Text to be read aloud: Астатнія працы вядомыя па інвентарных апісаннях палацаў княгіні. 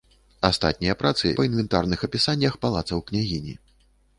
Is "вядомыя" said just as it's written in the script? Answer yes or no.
no